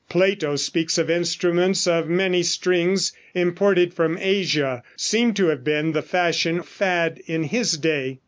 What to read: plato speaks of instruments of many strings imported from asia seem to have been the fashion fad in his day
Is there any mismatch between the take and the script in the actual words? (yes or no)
no